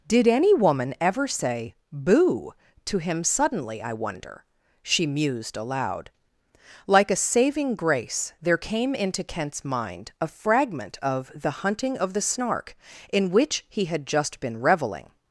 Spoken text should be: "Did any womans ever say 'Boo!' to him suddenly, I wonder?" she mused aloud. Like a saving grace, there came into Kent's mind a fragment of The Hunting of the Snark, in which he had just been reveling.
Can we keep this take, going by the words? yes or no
no